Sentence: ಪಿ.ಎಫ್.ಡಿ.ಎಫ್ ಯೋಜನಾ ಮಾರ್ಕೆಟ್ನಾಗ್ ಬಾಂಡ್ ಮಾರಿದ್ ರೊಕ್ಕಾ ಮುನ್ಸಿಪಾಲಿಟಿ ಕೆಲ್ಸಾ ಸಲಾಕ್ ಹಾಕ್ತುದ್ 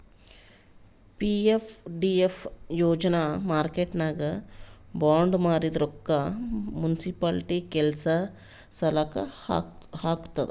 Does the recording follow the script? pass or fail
pass